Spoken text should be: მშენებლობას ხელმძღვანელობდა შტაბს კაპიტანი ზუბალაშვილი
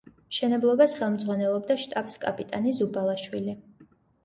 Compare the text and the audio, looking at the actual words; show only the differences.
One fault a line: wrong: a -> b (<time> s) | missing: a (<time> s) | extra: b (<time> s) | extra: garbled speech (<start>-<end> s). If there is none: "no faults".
no faults